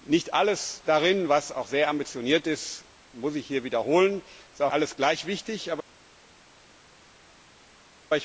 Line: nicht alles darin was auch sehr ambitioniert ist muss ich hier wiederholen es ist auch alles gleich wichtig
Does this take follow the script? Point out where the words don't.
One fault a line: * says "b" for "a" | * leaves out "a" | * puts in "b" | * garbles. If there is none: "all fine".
all fine